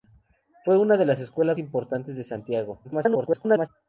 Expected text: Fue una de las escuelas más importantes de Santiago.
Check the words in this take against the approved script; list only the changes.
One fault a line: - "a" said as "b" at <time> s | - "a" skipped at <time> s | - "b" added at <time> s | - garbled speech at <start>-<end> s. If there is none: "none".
- "más" skipped at 1.6 s
- garbled speech at 2.8-3.7 s